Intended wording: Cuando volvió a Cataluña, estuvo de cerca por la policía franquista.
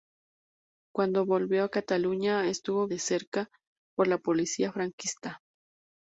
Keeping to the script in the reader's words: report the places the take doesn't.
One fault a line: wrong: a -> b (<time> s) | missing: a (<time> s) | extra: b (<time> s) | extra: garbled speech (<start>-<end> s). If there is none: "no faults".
no faults